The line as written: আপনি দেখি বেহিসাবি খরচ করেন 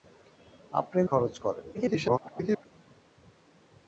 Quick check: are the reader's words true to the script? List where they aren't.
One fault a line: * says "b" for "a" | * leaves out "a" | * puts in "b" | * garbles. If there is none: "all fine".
* leaves out "দেখি বেহিসাবি"
* garbles